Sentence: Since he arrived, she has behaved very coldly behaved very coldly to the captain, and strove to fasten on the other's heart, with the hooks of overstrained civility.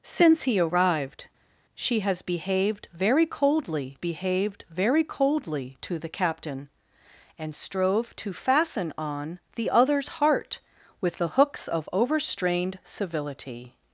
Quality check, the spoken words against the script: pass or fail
pass